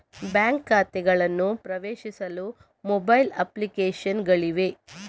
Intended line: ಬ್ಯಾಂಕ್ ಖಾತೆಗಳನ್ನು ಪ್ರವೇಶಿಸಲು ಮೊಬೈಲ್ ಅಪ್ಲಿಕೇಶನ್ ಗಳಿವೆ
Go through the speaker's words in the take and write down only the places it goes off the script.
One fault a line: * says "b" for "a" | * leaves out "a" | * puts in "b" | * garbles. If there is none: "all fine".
all fine